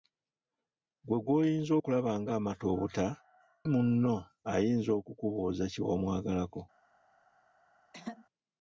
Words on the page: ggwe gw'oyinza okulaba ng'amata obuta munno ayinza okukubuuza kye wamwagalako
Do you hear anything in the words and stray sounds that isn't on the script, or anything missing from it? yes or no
yes